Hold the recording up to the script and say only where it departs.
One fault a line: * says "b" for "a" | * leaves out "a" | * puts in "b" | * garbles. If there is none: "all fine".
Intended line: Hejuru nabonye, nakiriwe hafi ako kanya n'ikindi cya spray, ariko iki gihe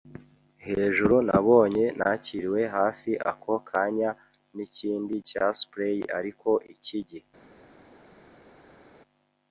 all fine